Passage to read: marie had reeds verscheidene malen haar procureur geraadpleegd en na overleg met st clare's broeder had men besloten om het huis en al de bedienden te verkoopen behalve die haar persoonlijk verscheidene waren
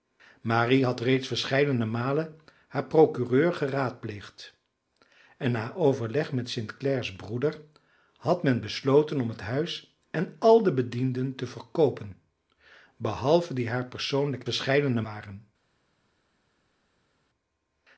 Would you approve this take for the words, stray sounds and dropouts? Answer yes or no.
yes